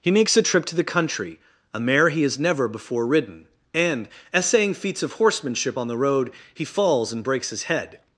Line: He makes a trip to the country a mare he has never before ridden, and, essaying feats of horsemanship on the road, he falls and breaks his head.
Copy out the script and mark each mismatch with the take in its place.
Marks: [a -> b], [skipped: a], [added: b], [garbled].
He makes a trip to the country a mare he has never before ridden, and, essaying feats of horsemanship on the road, he falls and breaks his head.